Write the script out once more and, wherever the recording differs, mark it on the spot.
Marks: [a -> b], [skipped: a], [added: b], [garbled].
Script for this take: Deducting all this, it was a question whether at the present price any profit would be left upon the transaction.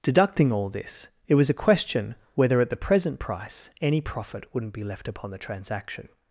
Deducting all this, it was a question whether at the present price any profit [would -> wouldn't] be left upon the transaction.